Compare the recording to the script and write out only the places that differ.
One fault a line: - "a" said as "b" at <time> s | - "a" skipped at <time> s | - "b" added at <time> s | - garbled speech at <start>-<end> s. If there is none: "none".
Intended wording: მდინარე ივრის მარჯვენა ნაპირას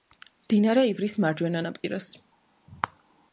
none